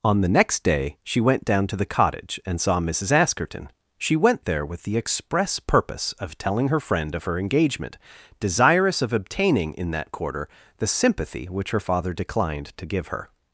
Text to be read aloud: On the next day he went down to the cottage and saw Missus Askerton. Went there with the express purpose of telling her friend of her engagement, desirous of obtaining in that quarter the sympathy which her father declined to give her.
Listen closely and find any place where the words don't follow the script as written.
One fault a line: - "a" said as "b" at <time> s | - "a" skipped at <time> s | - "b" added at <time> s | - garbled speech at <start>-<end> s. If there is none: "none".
- "he" said as "she" at 1.0 s
- "She" added at 4.0 s